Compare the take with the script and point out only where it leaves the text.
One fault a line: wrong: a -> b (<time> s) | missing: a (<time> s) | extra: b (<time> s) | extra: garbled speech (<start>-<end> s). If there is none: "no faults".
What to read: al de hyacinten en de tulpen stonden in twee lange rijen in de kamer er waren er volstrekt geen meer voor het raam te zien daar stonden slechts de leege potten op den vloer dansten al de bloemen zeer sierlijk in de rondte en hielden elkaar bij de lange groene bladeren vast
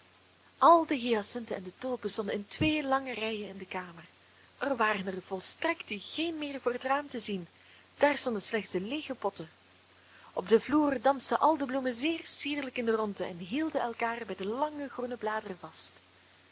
no faults